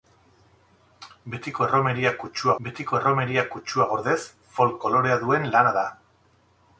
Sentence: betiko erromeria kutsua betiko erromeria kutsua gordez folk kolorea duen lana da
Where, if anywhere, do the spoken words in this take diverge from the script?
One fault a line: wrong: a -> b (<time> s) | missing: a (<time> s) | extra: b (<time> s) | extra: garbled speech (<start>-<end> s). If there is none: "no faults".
no faults